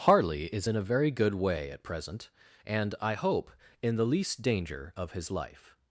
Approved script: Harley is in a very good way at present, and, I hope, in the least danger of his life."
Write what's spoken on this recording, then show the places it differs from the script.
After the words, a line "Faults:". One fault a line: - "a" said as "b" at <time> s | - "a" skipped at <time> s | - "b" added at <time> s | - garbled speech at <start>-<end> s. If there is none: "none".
Harley is in a very good way at present, and, I hope, in the least danger of his life."
Faults:
none